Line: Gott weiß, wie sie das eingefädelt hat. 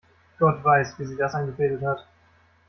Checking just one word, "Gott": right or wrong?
right